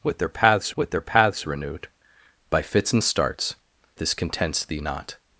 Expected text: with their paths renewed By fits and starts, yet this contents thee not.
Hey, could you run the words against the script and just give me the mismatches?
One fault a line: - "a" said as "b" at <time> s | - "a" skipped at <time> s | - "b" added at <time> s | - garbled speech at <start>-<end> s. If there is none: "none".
- "with their paths" added at 0.8 s
- "yet" skipped at 3.6 s